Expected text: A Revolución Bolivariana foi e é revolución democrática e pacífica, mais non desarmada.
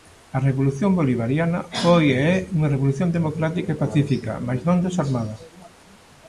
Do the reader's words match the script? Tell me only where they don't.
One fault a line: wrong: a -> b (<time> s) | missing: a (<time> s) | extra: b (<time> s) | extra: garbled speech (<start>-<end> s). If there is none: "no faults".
extra: unha (2.6 s)